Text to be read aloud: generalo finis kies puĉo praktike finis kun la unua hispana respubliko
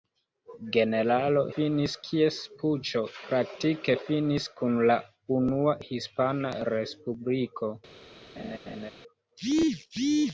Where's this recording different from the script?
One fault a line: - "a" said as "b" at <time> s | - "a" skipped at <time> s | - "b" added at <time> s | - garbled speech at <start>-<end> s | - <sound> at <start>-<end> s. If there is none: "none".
- laugh at 8.4-8.9 s